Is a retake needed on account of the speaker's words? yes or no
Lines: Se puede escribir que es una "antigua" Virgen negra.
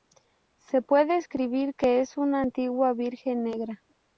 no